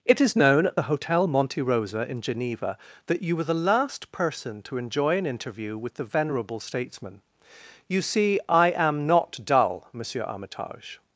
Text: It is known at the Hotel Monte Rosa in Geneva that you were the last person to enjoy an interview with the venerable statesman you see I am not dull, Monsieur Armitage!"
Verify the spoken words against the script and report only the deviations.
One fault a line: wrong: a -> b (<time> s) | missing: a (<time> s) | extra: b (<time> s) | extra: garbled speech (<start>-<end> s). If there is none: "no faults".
no faults